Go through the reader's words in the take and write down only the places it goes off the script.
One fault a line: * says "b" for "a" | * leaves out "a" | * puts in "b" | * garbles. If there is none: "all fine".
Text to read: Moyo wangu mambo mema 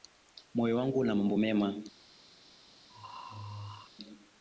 * puts in "una"